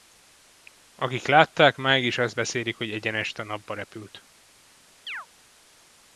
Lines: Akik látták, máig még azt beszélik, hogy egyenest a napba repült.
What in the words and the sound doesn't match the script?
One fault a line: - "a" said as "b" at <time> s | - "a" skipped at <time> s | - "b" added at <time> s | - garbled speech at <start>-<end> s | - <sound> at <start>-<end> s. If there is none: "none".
- "még" said as "is" at 2.0 s
- chirp at 5.1-5.3 s